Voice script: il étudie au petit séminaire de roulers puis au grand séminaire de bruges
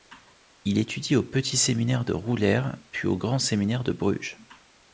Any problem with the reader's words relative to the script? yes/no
no